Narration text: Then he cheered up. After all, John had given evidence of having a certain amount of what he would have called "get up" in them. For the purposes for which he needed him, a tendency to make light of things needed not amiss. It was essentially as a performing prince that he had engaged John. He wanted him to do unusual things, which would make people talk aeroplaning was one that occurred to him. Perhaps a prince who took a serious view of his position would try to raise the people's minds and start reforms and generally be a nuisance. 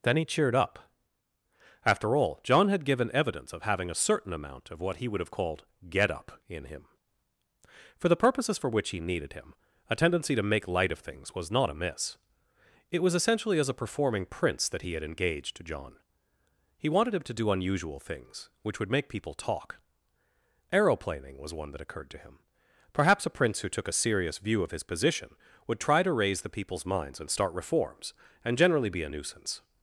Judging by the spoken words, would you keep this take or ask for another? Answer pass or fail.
fail